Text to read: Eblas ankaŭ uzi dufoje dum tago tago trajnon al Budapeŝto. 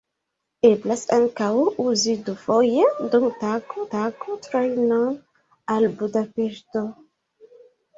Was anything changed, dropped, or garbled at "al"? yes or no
no